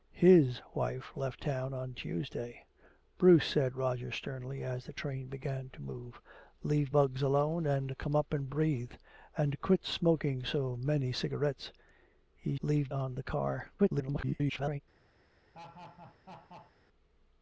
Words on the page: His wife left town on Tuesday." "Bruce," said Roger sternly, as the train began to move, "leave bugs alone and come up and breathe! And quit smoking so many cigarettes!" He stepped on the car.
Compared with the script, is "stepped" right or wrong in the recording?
wrong